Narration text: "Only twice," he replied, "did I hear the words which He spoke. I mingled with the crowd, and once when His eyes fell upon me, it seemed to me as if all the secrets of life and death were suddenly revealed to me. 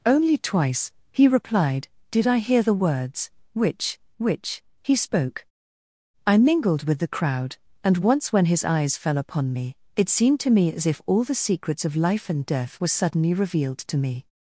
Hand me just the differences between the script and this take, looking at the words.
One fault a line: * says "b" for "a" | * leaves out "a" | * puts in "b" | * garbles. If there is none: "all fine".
* puts in "which"